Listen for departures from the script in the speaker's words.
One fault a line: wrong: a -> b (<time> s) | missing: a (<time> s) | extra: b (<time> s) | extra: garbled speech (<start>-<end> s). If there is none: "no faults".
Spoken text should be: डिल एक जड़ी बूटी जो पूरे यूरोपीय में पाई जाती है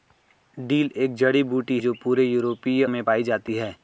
no faults